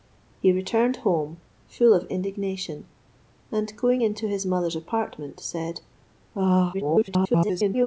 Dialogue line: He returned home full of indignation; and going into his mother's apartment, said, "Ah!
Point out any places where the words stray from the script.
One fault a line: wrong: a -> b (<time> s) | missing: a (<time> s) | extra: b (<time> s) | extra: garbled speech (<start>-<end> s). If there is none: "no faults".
extra: garbled speech (6.7-7.9 s)